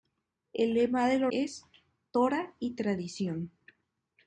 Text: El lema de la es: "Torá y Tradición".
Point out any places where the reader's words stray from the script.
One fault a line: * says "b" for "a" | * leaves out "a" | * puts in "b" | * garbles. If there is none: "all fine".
all fine